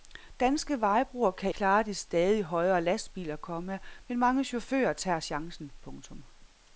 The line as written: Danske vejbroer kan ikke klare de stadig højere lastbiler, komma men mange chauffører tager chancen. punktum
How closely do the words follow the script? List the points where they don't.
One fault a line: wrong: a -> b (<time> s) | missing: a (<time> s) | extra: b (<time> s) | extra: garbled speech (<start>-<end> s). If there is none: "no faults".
missing: ikke (1.5 s)